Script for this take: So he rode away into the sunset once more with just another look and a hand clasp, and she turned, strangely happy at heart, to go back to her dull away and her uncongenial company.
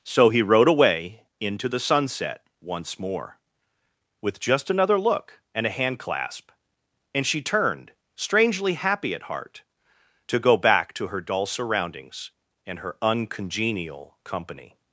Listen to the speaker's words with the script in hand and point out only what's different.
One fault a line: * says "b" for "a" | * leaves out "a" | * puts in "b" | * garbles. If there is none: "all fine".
* says "surroundings" for "away"